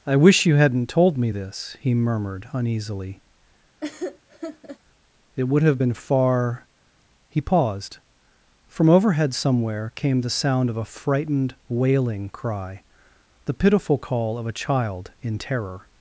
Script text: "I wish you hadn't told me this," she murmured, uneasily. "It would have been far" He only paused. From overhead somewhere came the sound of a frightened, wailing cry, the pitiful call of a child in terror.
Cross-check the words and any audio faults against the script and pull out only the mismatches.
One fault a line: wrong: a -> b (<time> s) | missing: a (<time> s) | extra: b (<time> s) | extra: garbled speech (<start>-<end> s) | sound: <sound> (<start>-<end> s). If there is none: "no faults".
wrong: she -> he (1.8 s)
sound: laugh (3.8-4.8 s)
missing: only (7.4 s)